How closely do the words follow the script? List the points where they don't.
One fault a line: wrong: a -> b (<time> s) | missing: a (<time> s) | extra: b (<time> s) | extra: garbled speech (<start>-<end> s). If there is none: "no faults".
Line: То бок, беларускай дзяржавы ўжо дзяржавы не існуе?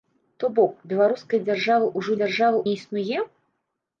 no faults